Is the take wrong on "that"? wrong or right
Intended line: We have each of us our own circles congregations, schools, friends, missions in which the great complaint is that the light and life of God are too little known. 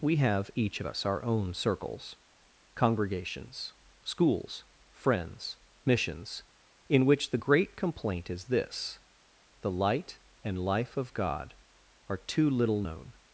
wrong